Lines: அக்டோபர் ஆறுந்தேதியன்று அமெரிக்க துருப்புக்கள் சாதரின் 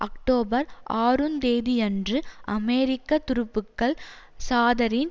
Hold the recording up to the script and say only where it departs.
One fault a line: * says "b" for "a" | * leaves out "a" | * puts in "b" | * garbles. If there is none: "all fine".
all fine